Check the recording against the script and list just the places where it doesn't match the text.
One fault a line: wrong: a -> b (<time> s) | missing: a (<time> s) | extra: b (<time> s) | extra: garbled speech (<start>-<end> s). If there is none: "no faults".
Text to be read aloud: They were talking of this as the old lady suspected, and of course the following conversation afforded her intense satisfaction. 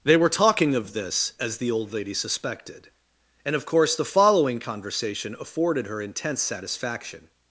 no faults